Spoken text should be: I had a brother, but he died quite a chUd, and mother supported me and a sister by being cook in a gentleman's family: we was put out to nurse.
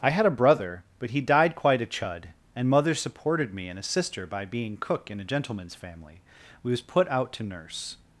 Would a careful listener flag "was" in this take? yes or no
no